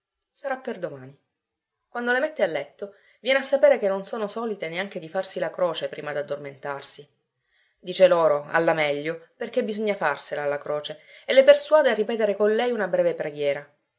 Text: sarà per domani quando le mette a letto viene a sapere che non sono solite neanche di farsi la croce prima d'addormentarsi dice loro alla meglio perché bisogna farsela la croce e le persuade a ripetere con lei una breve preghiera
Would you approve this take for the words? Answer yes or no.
yes